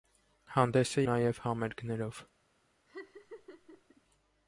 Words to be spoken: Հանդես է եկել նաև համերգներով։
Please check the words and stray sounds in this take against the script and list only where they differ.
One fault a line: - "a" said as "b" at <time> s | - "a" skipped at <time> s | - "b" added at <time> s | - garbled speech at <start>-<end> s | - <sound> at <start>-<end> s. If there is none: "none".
- "եկել" skipped at 1.0 s
- laugh at 2.9-4.0 s